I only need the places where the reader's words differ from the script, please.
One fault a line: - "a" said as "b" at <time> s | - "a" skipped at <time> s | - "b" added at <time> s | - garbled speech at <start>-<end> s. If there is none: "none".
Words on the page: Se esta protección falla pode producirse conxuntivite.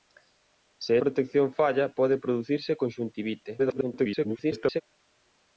- "esta" skipped at 1.0 s
- garbled speech at 3.6-4.8 s